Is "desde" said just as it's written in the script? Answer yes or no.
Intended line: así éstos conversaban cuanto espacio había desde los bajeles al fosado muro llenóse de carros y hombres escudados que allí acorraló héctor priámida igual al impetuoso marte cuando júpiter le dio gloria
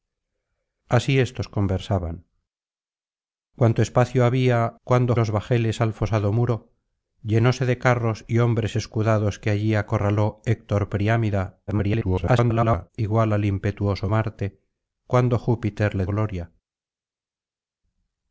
no